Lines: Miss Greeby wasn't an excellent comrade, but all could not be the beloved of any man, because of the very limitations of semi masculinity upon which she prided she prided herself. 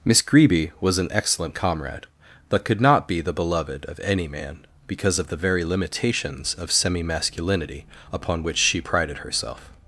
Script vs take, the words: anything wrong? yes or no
yes